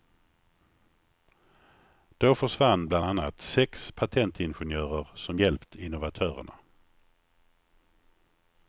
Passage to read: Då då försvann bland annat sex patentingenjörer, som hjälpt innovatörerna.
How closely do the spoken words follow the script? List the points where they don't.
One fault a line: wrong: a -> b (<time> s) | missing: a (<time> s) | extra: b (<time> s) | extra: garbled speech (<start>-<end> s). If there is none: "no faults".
missing: då (2.4 s)